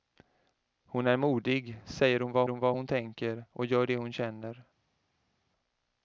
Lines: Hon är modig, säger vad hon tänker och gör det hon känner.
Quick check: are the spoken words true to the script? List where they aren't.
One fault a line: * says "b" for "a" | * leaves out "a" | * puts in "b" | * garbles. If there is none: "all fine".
* puts in "vad"